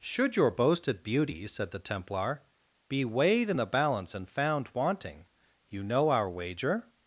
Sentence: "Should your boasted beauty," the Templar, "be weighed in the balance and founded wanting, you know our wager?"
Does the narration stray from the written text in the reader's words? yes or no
yes